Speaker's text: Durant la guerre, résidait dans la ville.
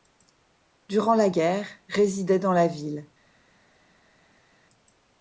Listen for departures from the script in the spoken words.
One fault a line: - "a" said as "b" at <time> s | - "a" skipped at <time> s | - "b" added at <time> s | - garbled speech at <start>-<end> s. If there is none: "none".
none